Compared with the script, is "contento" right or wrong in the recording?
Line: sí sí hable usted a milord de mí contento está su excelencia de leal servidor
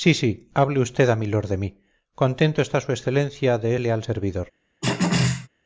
right